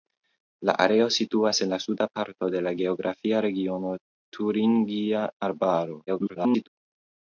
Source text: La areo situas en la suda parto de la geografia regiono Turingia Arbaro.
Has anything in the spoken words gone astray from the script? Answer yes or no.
yes